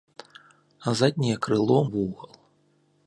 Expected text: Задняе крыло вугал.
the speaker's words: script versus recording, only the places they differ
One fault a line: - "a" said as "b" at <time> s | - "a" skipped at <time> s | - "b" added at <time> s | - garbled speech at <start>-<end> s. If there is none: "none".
none